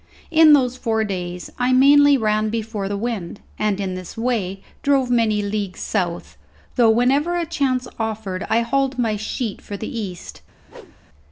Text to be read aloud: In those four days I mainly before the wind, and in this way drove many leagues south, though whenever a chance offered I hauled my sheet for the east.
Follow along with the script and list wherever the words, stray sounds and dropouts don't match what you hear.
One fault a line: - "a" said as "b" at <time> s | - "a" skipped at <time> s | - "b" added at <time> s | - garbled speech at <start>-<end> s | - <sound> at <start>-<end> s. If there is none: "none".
- "ran" added at 2.2 s
- whoosh at 10.7-11.0 s